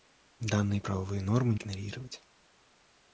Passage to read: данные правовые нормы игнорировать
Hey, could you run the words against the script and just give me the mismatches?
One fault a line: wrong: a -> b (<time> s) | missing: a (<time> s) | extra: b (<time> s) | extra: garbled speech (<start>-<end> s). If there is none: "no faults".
no faults